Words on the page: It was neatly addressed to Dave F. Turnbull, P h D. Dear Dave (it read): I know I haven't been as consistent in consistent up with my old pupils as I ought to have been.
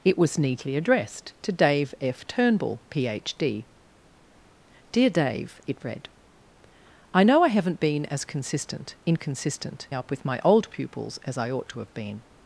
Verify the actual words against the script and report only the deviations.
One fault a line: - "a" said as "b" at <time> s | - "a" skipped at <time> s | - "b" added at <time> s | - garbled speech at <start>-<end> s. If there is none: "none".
none